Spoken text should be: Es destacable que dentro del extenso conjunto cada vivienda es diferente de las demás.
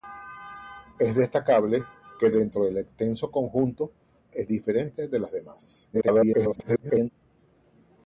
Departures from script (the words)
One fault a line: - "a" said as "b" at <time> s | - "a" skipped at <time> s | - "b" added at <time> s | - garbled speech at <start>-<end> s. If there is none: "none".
- "cada vivienda" skipped at 3.9 s
- garbled speech at 5.9-7.1 s